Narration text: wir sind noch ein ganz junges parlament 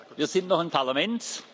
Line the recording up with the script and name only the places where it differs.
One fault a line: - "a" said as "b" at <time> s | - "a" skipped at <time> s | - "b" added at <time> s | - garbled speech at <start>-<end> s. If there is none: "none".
- "ganz junges" skipped at 0.7 s